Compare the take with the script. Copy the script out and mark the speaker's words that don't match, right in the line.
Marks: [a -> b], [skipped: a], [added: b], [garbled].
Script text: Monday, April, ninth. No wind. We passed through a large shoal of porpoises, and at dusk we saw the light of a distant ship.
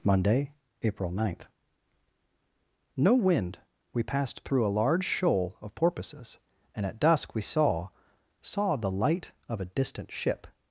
Monday, April, ninth. No wind. We passed through a large shoal of porpoises, and at dusk we saw [added: saw] the light of a distant ship.